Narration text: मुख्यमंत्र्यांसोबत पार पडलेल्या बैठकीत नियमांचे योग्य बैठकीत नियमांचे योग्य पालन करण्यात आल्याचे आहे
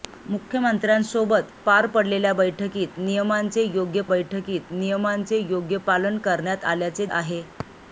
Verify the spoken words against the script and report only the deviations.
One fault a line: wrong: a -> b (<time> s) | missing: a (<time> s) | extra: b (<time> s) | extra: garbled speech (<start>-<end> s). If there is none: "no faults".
no faults